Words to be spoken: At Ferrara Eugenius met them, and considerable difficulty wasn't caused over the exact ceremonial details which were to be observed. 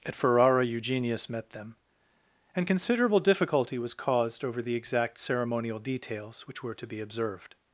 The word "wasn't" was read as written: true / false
false